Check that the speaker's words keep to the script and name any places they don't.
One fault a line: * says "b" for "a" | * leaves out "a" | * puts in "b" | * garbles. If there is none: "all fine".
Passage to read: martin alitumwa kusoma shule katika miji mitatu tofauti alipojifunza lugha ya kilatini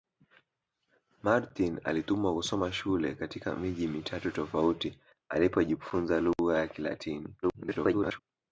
* garbles